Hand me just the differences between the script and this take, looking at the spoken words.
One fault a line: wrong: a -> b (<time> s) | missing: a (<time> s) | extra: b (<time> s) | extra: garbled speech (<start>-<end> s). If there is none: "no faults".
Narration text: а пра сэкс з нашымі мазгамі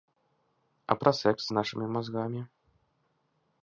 no faults